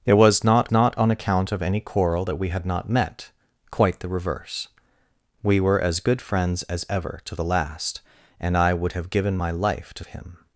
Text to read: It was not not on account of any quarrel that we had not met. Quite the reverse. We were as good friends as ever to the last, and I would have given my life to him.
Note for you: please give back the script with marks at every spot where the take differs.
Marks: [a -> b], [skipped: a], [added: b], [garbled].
It was not not on account of any quarrel that we had not met. Quite the reverse. We were as good friends as ever to the last, and I would have given my life to him.